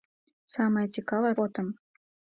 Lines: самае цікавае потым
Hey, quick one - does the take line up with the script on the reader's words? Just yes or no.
yes